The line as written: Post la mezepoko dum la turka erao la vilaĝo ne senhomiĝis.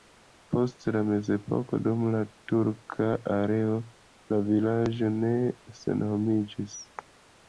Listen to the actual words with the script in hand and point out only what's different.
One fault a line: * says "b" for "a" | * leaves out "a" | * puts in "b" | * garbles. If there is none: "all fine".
all fine